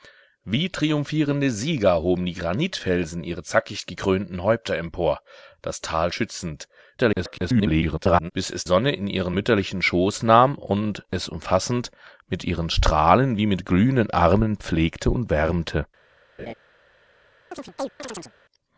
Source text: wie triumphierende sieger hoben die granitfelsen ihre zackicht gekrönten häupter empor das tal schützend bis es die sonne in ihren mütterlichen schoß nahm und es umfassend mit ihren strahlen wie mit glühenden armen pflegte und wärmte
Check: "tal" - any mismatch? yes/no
no